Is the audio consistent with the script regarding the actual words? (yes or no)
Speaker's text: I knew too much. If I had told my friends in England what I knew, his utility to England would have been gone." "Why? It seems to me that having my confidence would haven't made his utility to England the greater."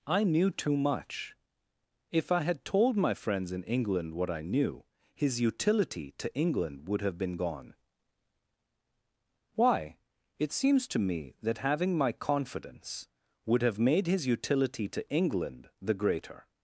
no